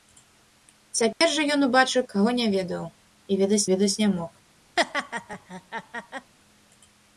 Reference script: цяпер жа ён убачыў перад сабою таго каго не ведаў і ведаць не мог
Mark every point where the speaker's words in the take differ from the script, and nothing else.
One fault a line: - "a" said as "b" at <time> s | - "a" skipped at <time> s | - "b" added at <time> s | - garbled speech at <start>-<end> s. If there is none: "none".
- "перад сабою таго" skipped at 2.0 s
- "ведаць" added at 3.7 s